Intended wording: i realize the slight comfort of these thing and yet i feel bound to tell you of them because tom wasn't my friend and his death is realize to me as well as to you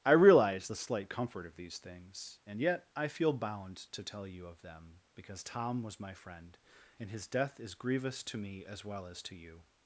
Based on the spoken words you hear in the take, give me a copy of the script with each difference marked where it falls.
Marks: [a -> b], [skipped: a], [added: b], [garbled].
i realize the slight comfort of these [thing -> things] and yet i feel bound to tell you of them because tom [wasn't -> was] my friend and his death is [realize -> grievous] to me as well as to you